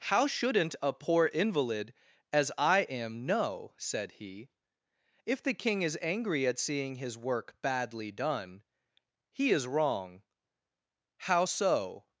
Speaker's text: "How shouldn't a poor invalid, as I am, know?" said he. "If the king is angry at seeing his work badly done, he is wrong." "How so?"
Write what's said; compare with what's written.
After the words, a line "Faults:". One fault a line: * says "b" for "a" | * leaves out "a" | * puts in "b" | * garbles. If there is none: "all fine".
"How shouldn't a poor invalid, as I am, know?" said he. "If the king is angry at seeing his work badly done, he is wrong." "How so?"
Faults:
all fine